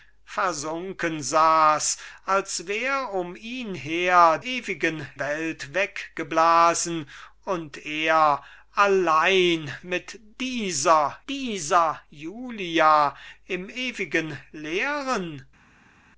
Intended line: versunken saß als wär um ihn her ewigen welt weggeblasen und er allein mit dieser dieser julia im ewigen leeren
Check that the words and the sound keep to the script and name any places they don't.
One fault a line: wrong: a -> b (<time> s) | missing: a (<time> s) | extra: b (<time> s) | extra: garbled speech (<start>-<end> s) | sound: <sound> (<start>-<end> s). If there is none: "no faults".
no faults